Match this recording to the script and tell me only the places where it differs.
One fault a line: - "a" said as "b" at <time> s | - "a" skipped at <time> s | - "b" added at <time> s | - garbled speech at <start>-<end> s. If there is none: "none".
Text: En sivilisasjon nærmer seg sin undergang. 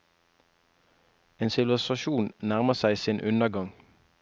none